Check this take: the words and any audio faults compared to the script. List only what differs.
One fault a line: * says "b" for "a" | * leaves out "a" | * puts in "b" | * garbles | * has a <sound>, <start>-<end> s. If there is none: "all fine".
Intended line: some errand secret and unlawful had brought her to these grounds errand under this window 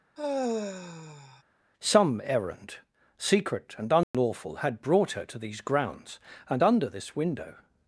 * has a sigh, 0.2-1.4 s
* has a dropout, 4.0-4.1 s
* says "and" for "errand"